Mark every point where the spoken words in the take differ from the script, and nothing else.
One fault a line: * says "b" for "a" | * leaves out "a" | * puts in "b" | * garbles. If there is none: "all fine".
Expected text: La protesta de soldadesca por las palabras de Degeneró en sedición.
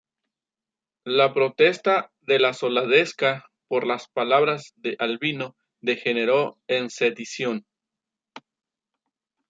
* puts in "la"
* puts in "Albino"